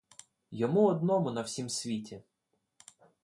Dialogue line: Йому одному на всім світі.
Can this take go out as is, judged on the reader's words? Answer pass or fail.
pass